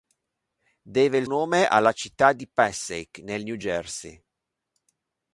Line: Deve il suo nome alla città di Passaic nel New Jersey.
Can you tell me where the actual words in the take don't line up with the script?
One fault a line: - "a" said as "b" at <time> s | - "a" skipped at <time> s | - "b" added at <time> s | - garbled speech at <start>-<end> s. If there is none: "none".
- "suo" skipped at 1.3 s